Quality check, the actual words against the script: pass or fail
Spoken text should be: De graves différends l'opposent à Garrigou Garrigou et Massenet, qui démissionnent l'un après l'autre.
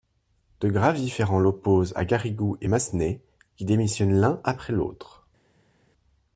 fail